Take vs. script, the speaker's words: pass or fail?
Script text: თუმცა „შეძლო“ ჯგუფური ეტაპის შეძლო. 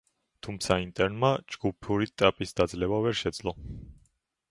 fail